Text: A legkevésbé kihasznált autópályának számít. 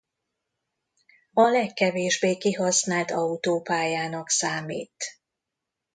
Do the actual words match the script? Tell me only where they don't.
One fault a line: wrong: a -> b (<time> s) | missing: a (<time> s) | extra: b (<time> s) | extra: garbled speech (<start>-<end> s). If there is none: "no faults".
no faults